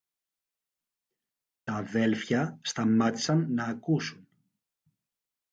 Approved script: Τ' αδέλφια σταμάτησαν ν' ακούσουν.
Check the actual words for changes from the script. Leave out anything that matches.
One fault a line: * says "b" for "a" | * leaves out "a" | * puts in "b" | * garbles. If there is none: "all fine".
all fine